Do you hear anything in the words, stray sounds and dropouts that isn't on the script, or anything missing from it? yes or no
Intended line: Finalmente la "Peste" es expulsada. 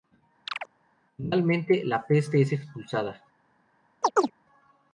yes